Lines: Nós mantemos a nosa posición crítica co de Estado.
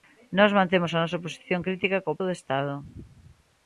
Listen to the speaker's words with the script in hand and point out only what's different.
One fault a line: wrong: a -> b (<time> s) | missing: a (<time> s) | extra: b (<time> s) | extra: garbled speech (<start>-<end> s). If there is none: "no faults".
no faults